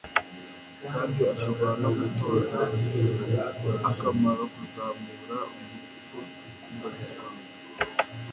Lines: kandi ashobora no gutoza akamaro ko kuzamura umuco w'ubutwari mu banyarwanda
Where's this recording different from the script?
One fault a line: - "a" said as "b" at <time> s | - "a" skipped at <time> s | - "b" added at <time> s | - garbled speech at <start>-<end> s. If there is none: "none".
- "ko" skipped at 4.4 s
- "w'ubutwari" skipped at 6.2 s